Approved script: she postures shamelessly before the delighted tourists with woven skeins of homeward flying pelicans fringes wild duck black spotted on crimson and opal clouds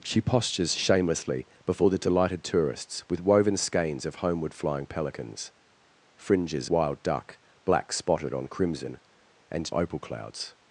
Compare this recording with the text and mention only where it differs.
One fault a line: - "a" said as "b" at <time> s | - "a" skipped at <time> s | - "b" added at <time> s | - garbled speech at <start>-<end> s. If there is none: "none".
none